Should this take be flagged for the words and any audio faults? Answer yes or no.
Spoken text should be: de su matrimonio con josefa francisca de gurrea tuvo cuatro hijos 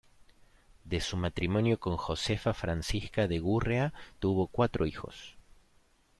no